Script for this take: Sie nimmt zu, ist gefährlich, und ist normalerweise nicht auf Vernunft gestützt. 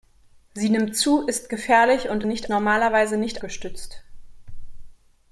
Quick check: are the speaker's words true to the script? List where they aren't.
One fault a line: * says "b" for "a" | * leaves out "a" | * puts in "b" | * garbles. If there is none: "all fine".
* says "nicht" for "ist"
* leaves out "auf Vernunft"